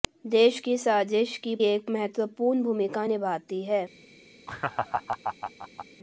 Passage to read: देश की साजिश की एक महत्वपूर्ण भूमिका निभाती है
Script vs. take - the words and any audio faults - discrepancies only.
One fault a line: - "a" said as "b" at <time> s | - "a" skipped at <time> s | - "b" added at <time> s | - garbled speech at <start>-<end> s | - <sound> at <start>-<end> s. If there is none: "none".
- laugh at 4.5-5.9 s